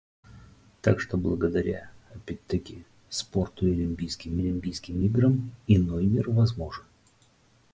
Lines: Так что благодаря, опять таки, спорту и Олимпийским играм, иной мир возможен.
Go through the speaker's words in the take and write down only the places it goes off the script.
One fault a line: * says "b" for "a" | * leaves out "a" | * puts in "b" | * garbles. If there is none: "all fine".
* puts in "Олимпийским"